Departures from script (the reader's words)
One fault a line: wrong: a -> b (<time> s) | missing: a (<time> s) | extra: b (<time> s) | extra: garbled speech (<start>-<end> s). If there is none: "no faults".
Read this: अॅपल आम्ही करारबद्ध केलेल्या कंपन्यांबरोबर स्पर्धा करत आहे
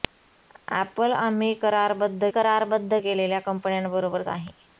extra: करारबद्ध (2.3 s)
missing: स्पर्धा करत (4.2 s)